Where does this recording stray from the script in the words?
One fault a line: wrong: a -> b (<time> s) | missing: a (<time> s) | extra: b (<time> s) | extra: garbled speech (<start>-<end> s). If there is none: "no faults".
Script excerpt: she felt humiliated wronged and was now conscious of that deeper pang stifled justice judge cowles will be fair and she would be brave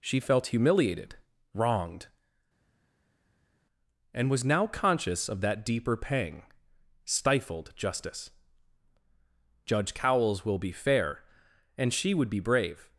no faults